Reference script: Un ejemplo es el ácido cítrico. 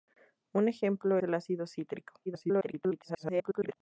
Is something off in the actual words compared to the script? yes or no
yes